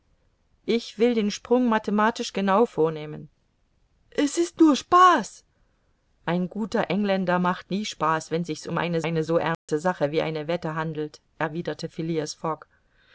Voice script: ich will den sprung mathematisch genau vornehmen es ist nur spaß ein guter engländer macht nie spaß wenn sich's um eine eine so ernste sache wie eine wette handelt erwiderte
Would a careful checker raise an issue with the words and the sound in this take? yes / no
yes